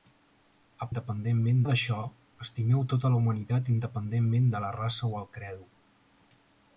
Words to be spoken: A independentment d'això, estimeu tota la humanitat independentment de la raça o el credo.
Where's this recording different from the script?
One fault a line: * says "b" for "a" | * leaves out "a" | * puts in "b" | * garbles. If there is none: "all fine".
all fine